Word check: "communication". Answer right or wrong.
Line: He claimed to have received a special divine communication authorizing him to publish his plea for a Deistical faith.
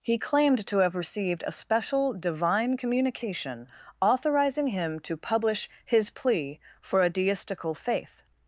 right